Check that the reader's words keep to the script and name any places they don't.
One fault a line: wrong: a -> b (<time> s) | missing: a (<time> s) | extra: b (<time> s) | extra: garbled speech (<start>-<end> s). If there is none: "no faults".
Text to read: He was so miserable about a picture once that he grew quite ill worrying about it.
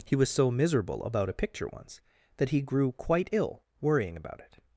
no faults